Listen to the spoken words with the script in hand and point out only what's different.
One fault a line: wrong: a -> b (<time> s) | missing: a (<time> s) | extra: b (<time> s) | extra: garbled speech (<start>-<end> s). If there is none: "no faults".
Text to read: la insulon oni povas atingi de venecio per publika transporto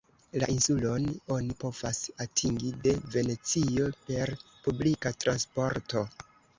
no faults